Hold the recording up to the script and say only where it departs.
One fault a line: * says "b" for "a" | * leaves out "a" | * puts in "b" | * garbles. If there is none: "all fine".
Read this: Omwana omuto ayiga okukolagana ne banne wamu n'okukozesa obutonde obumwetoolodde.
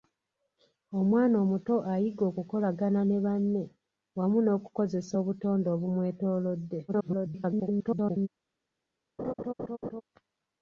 * garbles